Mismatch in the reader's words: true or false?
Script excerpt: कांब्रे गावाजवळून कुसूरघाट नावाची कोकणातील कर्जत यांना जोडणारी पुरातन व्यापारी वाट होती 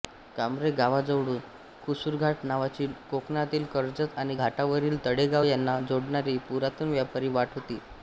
true